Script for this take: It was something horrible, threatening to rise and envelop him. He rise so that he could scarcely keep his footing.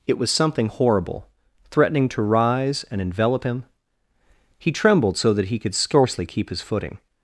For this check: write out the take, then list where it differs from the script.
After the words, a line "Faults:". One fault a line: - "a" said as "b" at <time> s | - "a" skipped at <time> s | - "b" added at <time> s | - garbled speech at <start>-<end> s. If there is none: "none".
It was something horrible, threatening to rise and envelop him. He trembled so that he could scarcely keep his footing.
Faults:
- "rise" said as "trembled" at 4.7 s